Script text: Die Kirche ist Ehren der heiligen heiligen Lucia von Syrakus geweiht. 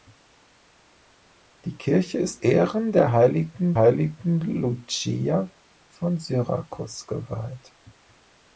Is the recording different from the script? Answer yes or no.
no